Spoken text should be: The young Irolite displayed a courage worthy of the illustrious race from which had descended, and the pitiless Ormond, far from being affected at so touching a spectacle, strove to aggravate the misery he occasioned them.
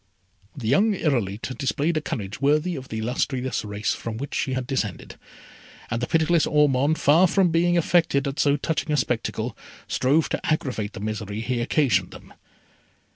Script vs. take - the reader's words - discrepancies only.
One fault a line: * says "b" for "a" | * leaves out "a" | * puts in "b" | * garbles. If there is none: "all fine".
* puts in "she"